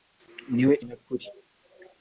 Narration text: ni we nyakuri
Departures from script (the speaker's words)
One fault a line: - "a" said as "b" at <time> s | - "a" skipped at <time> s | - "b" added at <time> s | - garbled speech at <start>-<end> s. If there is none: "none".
none